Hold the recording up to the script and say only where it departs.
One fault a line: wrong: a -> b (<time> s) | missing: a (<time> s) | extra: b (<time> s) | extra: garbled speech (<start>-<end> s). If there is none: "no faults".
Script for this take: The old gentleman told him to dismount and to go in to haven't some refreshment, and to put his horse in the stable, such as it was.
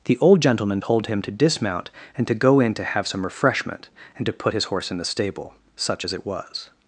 wrong: haven't -> have (2.8 s)